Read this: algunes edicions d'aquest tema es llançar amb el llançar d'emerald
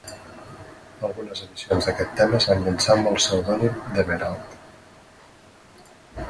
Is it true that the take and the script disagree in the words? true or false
true